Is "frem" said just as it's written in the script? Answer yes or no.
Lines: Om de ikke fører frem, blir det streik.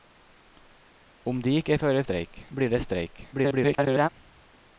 no